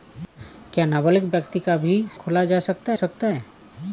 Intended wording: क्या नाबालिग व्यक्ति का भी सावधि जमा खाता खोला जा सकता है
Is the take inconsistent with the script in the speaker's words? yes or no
yes